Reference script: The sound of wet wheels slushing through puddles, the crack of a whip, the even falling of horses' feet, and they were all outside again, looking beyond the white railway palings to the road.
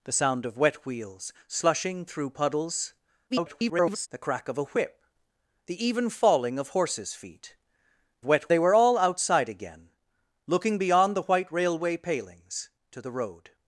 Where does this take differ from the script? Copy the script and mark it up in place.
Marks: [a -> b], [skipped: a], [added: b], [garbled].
The sound of wet wheels slushing through puddles, [garbled] the crack of a whip, the even falling of horses' feet, [and -> wet] they were all outside again, looking beyond the white railway palings to the road.